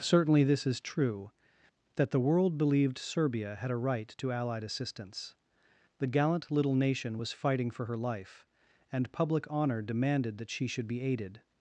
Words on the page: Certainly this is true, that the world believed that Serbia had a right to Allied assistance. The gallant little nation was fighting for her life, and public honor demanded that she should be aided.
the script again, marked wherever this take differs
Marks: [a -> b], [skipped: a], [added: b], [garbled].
Certainly this is true, that the world believed [skipped: that] Serbia had a right to Allied assistance. The gallant little nation was fighting for her life, and public honor demanded that she should be aided.